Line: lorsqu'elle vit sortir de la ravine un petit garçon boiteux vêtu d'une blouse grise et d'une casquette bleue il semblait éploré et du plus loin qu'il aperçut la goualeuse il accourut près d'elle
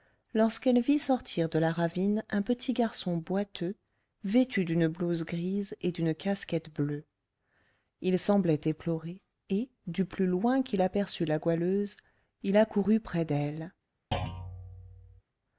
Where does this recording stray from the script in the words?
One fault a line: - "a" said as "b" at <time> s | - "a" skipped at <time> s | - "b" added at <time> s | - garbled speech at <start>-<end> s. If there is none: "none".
none